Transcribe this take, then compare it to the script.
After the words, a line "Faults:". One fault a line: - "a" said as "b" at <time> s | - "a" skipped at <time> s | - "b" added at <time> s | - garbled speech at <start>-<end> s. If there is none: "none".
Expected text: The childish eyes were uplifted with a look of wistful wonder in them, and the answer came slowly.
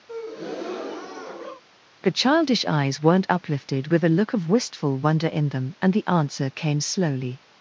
The childish eyes weren't uplifted with a look of wistful wonder in them, and the answer came slowly.
Faults:
- "were" said as "weren't" at 3.0 s